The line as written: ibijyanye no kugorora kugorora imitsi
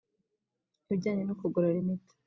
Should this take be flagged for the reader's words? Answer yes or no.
yes